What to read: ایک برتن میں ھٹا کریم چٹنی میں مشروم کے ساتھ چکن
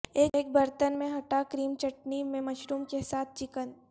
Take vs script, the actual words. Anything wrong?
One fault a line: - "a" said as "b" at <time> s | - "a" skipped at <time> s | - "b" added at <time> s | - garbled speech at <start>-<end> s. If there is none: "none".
none